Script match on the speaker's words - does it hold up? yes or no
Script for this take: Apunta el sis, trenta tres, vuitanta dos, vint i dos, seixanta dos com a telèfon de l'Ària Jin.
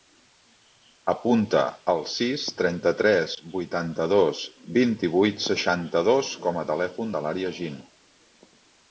no